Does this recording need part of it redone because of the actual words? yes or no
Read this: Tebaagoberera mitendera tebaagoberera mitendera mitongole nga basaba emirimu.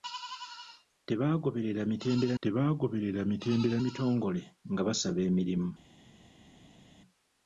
no